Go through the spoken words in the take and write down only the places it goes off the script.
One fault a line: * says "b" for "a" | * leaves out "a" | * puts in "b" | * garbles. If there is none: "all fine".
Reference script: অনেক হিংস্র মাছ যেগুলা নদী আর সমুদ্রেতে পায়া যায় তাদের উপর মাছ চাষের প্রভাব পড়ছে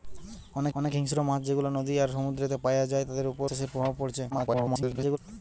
* puts in "অনেক"
* leaves out "মাছ"
* garbles